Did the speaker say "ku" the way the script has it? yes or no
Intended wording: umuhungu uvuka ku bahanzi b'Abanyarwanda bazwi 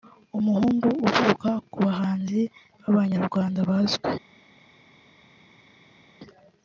yes